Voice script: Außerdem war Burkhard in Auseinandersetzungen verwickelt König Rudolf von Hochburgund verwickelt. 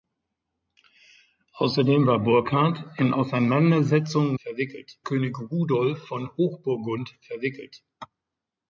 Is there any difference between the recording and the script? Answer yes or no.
no